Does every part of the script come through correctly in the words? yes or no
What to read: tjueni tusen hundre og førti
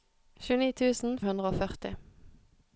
yes